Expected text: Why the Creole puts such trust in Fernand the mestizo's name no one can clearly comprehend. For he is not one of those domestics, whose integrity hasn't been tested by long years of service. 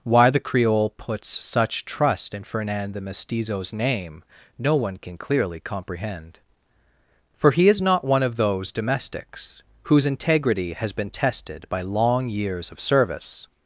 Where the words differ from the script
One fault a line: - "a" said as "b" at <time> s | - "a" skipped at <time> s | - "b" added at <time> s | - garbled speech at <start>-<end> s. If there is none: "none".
- "hasn't" said as "has" at 10.7 s